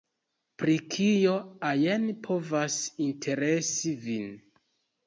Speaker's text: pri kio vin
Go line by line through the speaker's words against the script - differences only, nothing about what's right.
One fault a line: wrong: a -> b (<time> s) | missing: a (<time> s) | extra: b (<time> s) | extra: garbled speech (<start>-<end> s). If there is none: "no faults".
extra: ajn povas interesi (1.7 s)